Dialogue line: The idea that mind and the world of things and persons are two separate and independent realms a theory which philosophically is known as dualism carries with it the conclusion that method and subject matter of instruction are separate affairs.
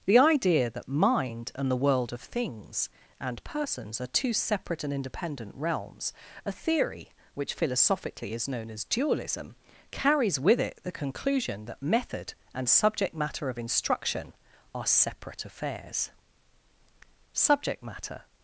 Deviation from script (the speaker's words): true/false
true